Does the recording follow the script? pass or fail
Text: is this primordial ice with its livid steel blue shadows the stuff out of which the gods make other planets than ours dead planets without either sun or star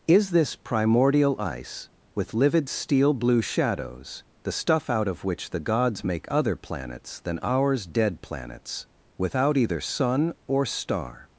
fail